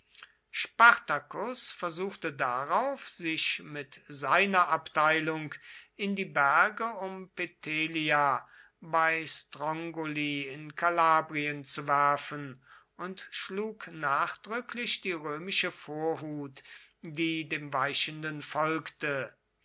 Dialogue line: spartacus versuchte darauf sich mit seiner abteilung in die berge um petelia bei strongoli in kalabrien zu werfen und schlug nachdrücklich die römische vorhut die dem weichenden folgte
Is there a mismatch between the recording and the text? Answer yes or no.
no